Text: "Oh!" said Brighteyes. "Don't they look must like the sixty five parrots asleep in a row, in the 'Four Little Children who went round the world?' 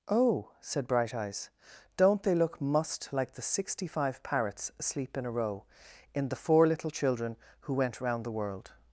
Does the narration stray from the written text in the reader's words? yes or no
no